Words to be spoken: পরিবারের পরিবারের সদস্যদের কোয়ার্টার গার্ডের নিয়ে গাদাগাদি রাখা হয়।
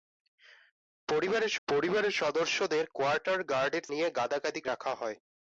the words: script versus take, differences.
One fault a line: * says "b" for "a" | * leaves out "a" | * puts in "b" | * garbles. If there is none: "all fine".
all fine